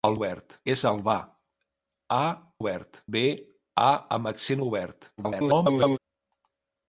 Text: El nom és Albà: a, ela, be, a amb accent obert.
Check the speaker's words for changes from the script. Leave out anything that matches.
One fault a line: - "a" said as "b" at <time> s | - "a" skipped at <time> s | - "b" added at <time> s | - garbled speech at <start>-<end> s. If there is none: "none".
- "nom" said as "obert" at 0.2 s
- "ela" said as "obert" at 2.6 s
- garbled speech at 5.2-6.0 s